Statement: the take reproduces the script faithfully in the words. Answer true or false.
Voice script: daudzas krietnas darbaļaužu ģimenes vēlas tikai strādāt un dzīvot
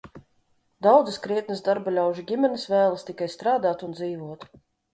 true